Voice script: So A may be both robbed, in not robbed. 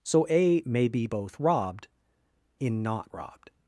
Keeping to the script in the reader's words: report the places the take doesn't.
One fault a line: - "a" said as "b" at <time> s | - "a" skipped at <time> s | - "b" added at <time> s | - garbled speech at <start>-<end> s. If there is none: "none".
none